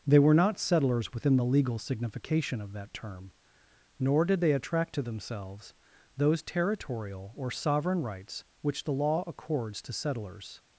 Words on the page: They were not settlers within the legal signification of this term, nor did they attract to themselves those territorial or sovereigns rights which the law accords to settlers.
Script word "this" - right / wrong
wrong